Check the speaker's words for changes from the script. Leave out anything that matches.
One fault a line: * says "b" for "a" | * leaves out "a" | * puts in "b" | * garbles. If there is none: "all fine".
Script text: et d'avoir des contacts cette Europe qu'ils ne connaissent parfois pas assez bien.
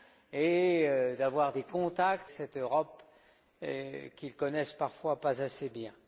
all fine